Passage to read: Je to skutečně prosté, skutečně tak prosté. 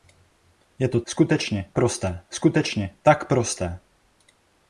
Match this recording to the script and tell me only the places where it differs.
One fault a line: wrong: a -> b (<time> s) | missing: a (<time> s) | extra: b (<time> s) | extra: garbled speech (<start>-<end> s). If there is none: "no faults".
no faults